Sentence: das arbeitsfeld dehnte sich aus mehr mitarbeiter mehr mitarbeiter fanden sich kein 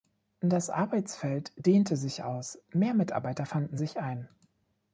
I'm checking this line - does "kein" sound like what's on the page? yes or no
no